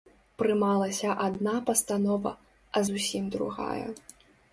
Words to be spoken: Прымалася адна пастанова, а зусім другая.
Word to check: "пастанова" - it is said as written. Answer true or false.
true